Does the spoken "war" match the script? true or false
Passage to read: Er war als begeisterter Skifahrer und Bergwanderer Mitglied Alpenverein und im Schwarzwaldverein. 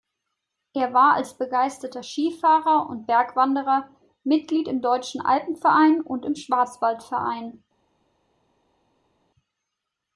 true